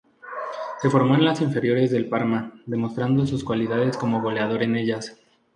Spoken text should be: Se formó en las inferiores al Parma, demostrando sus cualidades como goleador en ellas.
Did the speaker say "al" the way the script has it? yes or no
no